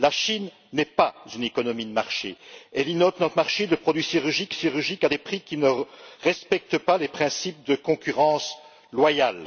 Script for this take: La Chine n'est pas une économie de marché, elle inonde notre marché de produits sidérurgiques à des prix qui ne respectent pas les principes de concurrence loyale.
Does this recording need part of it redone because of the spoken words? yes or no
yes